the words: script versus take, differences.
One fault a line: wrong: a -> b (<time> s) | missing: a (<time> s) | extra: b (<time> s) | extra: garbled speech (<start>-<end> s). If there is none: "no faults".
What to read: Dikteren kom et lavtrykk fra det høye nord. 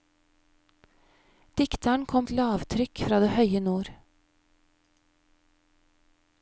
no faults